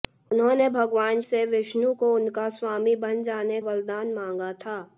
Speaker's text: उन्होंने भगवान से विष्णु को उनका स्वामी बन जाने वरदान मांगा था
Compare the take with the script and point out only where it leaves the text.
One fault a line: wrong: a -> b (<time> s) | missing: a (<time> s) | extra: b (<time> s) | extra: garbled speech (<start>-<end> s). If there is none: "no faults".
no faults